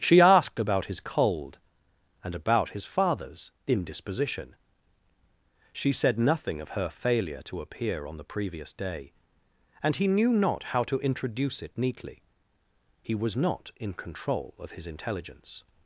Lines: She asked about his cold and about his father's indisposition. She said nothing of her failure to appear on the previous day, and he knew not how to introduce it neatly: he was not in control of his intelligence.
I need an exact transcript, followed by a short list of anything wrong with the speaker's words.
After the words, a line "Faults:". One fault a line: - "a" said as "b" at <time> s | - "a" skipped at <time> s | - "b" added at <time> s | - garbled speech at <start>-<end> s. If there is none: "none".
She asked about his cold and about his father's indisposition. She said nothing of her failure to appear on the previous day, and he knew not how to introduce it neatly: he was not in control of his intelligence.
Faults:
none